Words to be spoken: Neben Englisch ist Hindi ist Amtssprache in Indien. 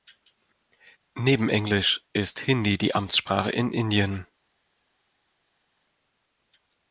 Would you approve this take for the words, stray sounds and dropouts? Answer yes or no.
no